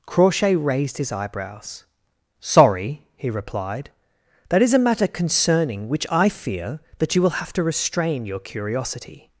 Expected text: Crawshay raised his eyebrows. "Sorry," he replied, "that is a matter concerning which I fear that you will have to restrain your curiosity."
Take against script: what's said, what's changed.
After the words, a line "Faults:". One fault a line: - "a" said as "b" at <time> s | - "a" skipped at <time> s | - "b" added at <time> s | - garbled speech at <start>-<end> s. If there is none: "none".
Crawshay raised his eyebrows. "Sorry," he replied, "that is a matter concerning which I fear that you will have to restrain your curiosity."
Faults:
none